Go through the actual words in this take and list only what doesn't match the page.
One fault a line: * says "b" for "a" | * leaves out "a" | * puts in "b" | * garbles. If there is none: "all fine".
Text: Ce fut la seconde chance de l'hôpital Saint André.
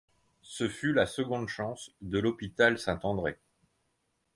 all fine